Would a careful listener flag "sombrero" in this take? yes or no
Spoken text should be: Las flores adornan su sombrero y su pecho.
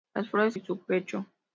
yes